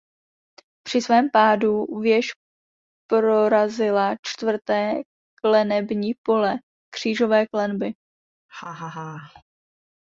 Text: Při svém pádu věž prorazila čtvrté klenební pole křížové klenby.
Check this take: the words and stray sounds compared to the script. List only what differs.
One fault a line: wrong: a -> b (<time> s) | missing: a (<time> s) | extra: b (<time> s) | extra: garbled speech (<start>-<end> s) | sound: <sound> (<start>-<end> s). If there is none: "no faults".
sound: laugh (8.5-9.4 s)